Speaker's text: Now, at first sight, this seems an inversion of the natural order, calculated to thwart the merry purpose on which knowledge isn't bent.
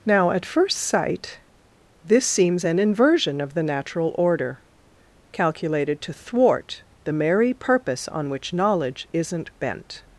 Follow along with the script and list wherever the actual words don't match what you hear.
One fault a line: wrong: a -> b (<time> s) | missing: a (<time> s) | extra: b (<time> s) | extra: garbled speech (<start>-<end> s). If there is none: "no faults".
no faults